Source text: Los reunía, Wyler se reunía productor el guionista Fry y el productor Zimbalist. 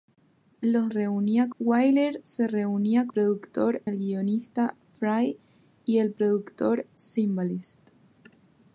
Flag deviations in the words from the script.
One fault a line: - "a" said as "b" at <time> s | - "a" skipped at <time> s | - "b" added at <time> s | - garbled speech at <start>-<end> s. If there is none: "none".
none